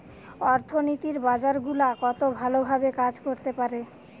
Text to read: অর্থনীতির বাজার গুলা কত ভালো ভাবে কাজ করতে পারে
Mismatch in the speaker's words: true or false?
false